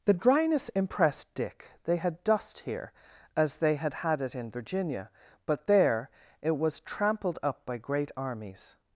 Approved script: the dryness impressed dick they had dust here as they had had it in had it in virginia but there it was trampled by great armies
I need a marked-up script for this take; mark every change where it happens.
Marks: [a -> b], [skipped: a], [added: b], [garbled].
the dryness impressed dick they had dust here as they had had it in [skipped: had it in] virginia but there it was trampled [added: up] by great armies